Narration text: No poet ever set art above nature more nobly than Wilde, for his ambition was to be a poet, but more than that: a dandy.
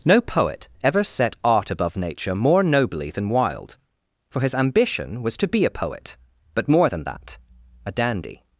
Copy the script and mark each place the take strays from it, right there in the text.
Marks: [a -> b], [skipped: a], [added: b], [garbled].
No poet ever set art above nature more nobly than Wilde, for his ambition was to be a poet, but more than that: a dandy.